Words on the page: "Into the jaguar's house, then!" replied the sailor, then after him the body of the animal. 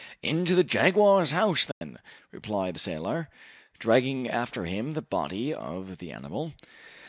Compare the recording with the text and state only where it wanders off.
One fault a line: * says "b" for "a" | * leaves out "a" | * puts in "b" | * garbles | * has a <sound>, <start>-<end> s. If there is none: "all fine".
* has a dropout, 1.7-1.8 s
* says "dragging" for "then"